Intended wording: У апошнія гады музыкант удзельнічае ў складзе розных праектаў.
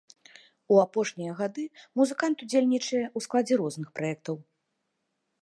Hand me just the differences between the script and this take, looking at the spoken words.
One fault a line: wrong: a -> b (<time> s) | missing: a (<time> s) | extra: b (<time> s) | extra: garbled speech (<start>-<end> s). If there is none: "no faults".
no faults